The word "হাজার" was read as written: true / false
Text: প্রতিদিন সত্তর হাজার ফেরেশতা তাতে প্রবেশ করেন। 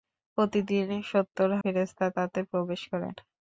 false